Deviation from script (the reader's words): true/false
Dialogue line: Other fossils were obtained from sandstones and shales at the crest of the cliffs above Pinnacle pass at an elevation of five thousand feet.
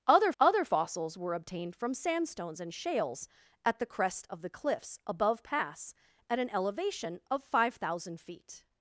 true